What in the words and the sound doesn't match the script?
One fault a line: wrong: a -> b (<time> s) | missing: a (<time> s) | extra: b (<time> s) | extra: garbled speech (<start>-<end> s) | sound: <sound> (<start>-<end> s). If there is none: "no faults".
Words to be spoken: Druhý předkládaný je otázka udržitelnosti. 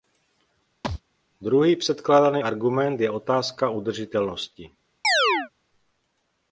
sound: thud (0.8-1.0 s)
extra: argument (2.4 s)
sound: chirp (5.0-5.5 s)